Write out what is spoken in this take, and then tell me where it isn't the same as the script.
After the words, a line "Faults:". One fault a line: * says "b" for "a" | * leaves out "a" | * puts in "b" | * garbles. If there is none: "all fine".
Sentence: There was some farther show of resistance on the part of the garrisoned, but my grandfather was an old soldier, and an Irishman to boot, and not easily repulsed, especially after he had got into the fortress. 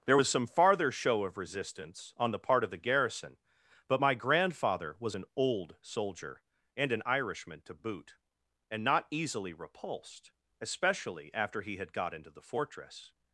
There was some farther show of resistance on the part of the garrison, but my grandfather was an old soldier, and an Irishman to boot, and not easily repulsed, especially after he had got into the fortress.
Faults:
* says "garrison" for "garrisoned"